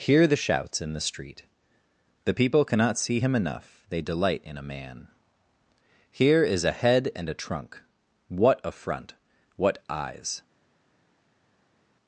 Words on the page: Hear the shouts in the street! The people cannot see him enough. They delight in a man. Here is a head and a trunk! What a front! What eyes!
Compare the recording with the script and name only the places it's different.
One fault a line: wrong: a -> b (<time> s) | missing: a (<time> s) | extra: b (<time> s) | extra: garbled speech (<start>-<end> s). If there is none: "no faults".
no faults